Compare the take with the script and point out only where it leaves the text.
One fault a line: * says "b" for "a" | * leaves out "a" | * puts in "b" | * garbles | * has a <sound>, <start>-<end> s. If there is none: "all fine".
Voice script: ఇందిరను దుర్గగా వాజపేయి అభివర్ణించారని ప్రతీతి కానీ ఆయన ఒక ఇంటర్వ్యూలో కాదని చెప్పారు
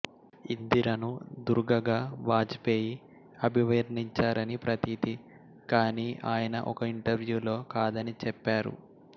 all fine